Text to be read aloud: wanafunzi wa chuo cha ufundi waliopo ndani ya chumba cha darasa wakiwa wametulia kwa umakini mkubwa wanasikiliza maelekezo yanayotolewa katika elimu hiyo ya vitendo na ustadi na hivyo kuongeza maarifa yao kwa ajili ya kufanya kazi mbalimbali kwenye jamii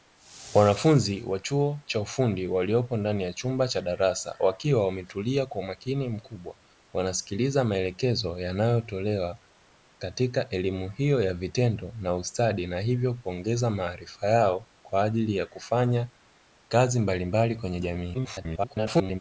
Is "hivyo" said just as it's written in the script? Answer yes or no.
yes